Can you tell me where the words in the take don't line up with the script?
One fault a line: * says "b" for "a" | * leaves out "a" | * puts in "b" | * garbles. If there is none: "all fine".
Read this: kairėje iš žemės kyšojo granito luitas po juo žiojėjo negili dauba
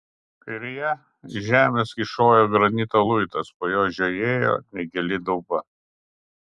all fine